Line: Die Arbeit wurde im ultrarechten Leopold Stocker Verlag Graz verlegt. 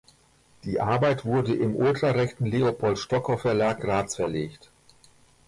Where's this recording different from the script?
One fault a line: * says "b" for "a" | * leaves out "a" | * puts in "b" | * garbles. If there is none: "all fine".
all fine